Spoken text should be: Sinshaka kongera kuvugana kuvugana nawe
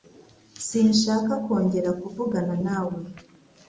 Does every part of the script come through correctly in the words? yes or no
no